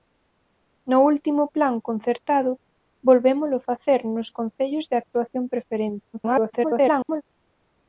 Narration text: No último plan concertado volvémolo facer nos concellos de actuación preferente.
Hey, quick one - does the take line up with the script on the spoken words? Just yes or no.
no